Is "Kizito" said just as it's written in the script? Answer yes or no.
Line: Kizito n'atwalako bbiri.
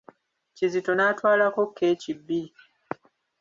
yes